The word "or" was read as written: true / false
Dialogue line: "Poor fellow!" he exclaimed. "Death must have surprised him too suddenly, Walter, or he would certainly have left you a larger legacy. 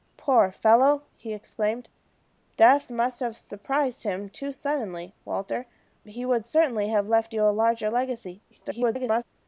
false